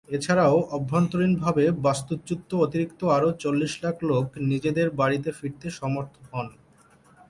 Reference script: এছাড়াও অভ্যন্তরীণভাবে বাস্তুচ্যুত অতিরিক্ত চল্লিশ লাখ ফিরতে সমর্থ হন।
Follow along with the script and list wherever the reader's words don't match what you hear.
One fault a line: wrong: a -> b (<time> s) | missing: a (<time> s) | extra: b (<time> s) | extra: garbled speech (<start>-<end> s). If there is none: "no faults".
extra: আরও (3.1 s)
extra: লোক নিজেদের বাড়িতে (4.1 s)